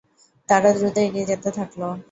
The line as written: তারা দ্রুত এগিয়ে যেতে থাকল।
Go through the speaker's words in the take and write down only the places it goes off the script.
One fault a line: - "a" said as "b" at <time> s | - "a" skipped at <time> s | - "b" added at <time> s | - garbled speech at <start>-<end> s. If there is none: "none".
none